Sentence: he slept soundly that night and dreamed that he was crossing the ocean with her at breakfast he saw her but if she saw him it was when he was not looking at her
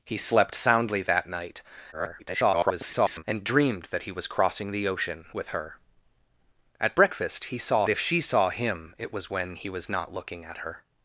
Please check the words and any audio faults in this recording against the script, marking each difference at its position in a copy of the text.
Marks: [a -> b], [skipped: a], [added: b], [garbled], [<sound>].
he slept soundly that night [garbled] and dreamed that he was crossing the ocean with her at breakfast he saw [skipped: her but] if she saw him it was when he was not looking at her